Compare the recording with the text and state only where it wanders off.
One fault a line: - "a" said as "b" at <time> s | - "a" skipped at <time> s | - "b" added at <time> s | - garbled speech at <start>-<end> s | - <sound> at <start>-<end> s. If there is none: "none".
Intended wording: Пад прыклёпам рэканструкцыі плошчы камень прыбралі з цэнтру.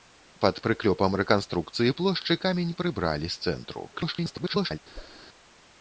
- garbled speech at 3.9-4.8 s
- whoosh at 4.9-5.2 s